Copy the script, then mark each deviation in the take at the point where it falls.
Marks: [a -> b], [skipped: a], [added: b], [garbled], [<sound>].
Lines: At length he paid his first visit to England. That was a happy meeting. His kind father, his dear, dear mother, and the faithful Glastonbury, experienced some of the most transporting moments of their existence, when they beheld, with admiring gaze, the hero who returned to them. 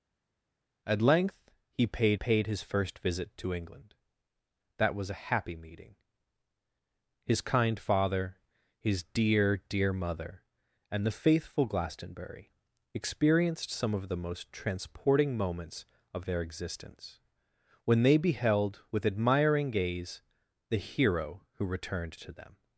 At length he paid [added: paid] his first visit to England. That was a happy meeting. His kind father, his dear, dear mother, and the faithful Glastonbury, experienced some of the most transporting moments of their existence, when they beheld, with admiring gaze, the hero who returned to them.